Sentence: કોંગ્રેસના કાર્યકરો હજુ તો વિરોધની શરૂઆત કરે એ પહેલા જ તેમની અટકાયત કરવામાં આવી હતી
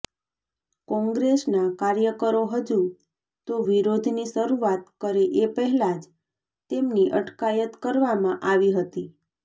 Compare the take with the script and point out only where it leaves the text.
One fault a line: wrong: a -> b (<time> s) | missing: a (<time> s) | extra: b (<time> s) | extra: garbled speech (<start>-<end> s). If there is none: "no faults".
no faults